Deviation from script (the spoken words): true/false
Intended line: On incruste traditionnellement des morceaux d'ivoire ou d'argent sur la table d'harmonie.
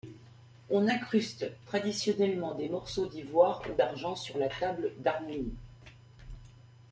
false